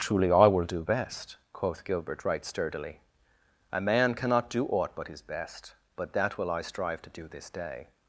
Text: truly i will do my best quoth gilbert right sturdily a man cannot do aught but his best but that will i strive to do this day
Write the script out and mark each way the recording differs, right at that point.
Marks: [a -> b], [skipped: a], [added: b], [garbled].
truly i will do [skipped: my] best quoth gilbert right sturdily a man cannot do aught but his best but that will i strive to do this day